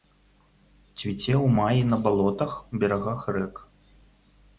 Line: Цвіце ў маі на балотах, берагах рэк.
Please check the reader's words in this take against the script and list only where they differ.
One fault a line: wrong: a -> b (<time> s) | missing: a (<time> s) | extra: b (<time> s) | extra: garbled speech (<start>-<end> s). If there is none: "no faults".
no faults